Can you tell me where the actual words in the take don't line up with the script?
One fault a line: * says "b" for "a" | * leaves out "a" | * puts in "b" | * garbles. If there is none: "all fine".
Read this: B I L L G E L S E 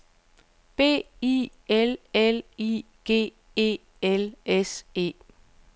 * puts in "I"